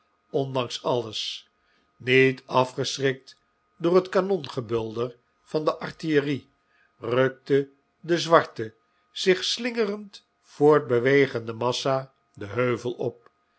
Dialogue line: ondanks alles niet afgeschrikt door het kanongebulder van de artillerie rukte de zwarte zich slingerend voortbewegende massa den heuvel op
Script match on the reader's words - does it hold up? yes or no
yes